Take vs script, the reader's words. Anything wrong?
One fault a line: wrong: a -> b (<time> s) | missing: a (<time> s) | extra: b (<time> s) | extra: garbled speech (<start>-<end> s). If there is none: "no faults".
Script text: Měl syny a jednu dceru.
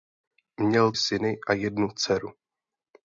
no faults